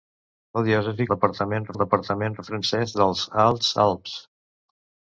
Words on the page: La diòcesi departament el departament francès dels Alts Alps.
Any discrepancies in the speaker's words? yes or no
no